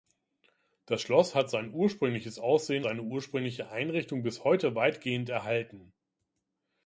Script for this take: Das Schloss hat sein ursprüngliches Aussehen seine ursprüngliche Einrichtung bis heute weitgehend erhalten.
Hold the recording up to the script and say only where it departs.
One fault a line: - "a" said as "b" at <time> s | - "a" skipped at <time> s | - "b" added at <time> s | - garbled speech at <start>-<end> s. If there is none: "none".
none